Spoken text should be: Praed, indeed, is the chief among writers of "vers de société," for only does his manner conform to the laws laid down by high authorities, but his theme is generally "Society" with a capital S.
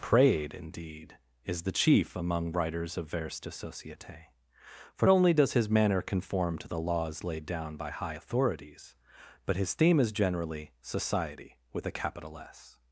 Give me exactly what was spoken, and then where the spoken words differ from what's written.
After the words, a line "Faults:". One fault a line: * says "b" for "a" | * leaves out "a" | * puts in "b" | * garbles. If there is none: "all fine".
Praed, indeed, is the chief among writers of "vers de société," for only does his manner conform to the laws laid down by high authorities, but his theme is generally "Society" with a capital S.
Faults:
all fine